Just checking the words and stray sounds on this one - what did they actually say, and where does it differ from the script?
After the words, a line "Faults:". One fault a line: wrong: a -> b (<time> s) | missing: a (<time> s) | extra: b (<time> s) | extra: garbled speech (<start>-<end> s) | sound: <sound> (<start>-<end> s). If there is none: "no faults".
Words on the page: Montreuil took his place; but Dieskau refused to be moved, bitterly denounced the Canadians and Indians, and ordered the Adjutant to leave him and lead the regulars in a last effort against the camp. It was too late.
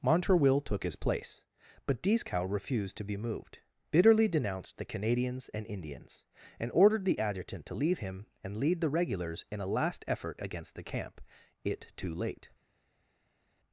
Montreuil took his place; but Dieskau refused to be moved, bitterly denounced the Canadians and Indians, and ordered the Adjutant to leave him and lead the regulars in a last effort against the camp. It too late.
Faults:
missing: was (11.9 s)